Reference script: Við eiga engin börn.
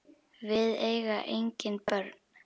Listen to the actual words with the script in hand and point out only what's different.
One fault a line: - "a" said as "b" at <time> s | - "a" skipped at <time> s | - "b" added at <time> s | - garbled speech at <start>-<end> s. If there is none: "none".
none